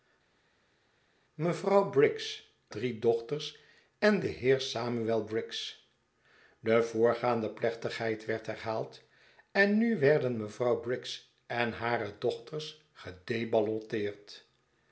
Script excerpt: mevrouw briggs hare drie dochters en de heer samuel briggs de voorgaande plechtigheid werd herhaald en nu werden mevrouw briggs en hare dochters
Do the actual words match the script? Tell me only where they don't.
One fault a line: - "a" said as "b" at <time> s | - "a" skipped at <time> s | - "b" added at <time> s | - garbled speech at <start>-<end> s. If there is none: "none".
- "hare" skipped at 2.5 s